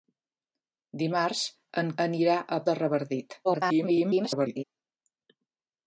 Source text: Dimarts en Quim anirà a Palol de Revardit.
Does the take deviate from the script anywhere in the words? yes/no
yes